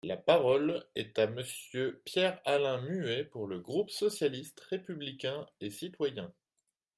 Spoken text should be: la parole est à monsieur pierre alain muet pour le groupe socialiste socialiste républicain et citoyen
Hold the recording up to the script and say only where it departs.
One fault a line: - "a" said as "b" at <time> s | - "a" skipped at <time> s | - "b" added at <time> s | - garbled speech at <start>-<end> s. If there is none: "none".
- "socialiste" skipped at 4.6 s